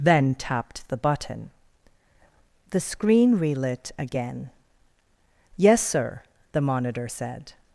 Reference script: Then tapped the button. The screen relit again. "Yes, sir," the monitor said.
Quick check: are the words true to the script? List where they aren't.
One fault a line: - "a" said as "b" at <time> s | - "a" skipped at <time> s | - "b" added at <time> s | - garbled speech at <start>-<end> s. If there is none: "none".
none